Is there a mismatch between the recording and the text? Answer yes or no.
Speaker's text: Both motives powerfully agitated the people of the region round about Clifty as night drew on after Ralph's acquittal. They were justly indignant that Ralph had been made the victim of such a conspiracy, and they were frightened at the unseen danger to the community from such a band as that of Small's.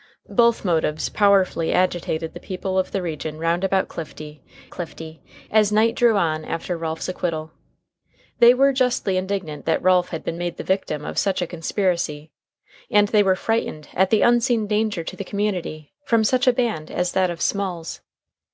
yes